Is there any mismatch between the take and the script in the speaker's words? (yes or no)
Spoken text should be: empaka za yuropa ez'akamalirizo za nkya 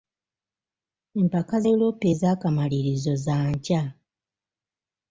yes